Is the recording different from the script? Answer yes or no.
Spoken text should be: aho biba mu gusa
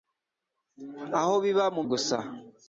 no